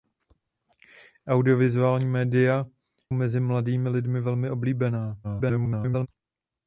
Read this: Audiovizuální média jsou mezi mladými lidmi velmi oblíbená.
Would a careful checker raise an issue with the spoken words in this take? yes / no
yes